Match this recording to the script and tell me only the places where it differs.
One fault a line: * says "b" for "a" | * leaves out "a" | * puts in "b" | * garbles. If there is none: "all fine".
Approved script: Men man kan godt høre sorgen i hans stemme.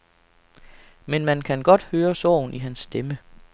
all fine